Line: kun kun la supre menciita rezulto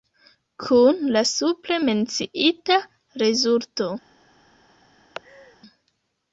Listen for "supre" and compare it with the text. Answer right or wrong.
right